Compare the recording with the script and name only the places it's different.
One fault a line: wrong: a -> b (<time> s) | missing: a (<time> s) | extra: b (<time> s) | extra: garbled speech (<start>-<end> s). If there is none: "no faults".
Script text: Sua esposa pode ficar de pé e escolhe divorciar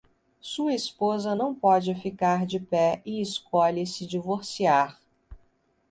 extra: não (1.3 s)
extra: se (3.9 s)